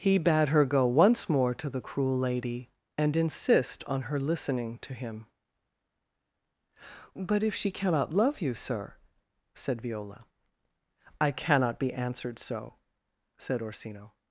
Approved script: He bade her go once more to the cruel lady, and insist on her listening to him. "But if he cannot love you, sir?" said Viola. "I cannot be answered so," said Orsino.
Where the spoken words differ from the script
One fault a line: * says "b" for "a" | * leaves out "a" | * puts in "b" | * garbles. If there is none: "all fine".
* says "she" for "he"